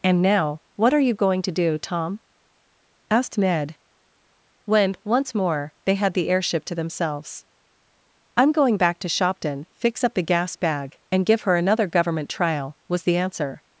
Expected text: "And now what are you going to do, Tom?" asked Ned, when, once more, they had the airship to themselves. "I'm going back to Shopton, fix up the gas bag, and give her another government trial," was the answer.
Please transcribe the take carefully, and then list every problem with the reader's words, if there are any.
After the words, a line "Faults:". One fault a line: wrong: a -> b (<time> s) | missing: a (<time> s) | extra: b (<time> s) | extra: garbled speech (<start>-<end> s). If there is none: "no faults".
"And now what are you going to do, Tom?" asked Ned, when, once more, they had the airship to themselves. "I'm going back to Shopton, fix up the gas bag, and give her another government trial," was the answer.
Faults:
no faults